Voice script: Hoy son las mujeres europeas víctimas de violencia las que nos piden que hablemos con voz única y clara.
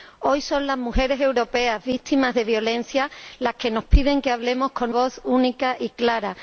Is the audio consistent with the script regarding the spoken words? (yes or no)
yes